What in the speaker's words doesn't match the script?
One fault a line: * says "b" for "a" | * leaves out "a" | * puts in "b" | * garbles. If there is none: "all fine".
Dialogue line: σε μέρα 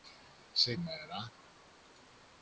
all fine